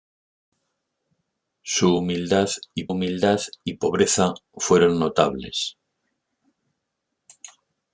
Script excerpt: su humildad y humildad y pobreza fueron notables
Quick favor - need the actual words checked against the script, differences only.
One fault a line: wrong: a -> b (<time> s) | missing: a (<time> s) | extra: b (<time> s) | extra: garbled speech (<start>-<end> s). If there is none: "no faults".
no faults